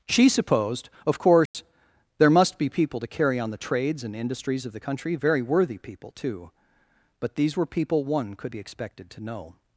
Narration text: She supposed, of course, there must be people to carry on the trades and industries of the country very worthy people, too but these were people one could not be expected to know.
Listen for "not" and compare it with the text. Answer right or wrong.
wrong